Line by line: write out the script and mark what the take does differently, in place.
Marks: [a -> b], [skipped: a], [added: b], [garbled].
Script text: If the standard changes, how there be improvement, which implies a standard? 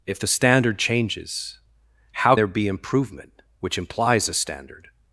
If the standard changes, how there be improvement, which implies a standard?